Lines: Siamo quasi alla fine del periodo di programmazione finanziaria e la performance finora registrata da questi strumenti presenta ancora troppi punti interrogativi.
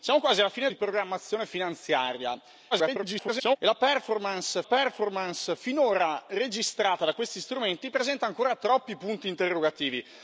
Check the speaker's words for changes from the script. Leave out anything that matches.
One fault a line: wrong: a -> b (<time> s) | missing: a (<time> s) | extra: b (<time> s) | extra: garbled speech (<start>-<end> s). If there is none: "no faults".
missing: del periodo (0.7 s)
extra: garbled speech (2.7-3.6 s)
extra: performance (4.6 s)